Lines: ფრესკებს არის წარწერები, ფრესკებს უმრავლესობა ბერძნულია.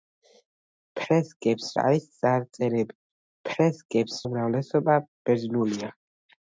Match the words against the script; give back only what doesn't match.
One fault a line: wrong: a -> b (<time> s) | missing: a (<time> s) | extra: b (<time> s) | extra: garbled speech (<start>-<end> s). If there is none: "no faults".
no faults